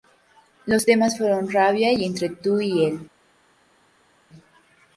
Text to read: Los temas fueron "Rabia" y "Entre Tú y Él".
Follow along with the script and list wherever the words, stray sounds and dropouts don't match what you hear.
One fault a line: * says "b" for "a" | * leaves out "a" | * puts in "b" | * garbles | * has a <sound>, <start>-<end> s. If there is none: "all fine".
all fine